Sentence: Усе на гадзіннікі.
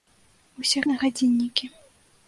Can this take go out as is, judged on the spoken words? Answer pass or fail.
pass